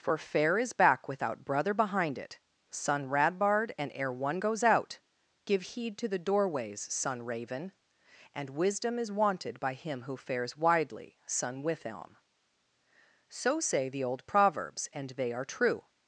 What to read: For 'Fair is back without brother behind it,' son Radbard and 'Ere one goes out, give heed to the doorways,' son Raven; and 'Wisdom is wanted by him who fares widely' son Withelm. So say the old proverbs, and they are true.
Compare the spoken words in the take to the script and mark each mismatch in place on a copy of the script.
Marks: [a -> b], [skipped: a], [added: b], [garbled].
For 'Fair is back without brother behind it,' son Radbard and 'Ere one goes out, give heed to the doorways,' son Raven; and 'Wisdom is wanted by him who fares widely' son Withelm. So say the old proverbs, and they are true.